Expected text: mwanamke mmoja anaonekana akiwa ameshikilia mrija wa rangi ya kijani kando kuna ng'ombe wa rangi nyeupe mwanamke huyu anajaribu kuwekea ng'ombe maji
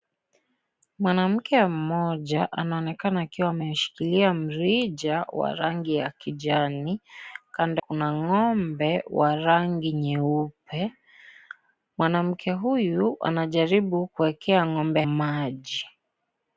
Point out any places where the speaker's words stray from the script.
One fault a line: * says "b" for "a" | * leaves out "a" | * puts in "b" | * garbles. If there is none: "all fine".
all fine